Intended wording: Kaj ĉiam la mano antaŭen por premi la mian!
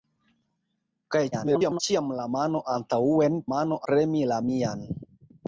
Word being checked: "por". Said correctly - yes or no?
no